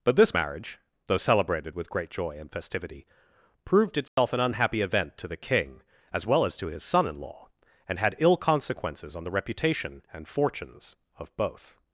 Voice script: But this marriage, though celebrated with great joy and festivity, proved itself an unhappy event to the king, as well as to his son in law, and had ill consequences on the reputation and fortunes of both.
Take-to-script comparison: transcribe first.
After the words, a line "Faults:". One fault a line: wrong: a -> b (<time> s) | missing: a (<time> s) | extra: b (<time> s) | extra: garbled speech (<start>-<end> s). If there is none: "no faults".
But this marriage, though celebrated with great joy and festivity, proved itself an unhappy event to the king, as well as to his son in law, and had ill consequences on the reputation and fortunes of both.
Faults:
no faults